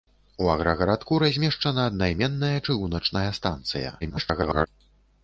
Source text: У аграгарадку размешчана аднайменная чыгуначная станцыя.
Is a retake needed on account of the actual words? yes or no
yes